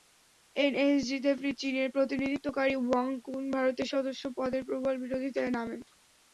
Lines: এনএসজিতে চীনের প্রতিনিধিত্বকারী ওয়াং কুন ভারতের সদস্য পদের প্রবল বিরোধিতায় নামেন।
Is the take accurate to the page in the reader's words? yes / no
yes